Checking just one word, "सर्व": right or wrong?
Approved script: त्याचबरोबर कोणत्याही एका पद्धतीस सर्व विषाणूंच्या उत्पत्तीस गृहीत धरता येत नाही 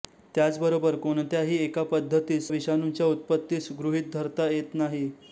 wrong